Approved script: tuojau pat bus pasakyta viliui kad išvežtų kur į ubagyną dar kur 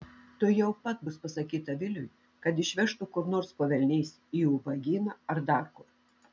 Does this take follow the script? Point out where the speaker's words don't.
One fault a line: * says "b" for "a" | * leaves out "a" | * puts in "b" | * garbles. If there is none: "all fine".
* puts in "nors po velniais"
* puts in "ar"